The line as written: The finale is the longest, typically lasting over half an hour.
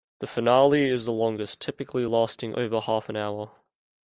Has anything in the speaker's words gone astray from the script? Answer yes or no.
no